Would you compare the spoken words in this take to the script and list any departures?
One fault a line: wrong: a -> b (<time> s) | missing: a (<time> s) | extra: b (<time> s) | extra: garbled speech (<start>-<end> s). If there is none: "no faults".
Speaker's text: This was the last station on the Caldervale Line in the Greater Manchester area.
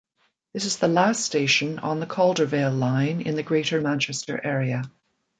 wrong: was -> is (0.7 s)